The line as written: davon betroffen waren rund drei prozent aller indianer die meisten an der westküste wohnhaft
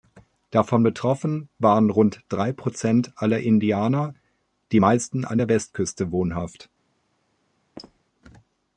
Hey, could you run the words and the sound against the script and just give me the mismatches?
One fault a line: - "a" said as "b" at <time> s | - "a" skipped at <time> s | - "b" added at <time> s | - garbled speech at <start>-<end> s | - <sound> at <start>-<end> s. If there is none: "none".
- squeak at 7.8-8.0 s